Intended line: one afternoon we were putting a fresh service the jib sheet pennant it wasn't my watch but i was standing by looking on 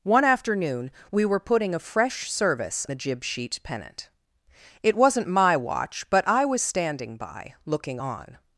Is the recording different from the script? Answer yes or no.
no